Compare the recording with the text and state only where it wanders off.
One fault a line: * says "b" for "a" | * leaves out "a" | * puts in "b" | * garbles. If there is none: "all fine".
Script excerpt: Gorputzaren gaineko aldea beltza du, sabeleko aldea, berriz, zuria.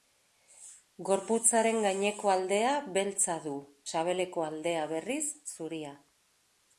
all fine